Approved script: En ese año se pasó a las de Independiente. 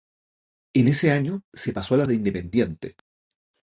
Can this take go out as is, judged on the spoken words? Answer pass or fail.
pass